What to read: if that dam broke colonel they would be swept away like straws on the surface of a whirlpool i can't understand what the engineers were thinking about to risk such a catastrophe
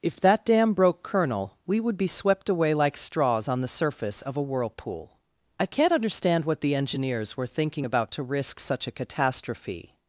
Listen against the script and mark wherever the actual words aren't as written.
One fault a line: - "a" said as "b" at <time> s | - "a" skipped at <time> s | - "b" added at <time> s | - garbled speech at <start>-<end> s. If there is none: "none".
- "they" said as "we" at 1.7 s